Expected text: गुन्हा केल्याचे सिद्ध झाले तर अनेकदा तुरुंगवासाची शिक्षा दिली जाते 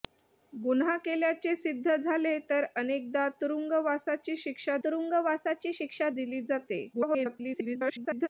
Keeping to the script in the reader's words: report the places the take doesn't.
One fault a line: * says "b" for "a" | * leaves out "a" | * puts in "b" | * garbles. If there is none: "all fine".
* puts in "तुरुंगवासाची शिक्षा"
* garbles